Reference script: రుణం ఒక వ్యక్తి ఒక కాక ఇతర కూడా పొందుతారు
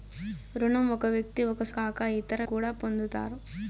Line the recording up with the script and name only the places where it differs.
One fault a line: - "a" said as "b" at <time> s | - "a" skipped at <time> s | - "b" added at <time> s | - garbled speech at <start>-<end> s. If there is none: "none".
none